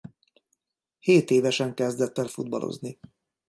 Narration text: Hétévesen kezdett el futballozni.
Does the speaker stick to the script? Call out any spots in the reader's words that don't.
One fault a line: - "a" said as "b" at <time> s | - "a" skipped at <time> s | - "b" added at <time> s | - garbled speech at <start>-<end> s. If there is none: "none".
none